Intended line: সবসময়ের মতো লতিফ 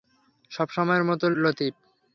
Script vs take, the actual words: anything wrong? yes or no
no